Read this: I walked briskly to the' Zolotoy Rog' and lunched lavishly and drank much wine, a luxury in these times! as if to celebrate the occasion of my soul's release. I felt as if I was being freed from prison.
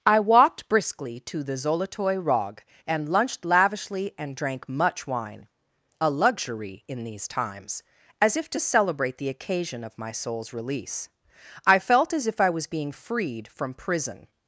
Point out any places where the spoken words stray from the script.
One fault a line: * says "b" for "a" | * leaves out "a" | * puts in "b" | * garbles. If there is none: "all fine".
all fine